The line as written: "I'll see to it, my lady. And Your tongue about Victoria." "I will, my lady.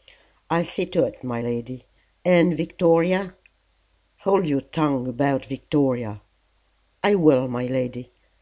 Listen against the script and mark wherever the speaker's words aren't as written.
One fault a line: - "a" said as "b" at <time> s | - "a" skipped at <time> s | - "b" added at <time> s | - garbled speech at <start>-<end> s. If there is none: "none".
- "Victoria Hold" added at 2.6 s